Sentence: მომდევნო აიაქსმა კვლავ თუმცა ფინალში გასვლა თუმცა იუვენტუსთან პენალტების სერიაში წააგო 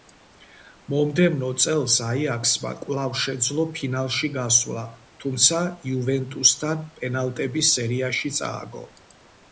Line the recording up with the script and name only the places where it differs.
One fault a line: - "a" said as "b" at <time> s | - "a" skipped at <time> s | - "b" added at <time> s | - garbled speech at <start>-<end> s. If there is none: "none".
- "წელს" added at 1.6 s
- "თუმცა" said as "შეძლო" at 3.2 s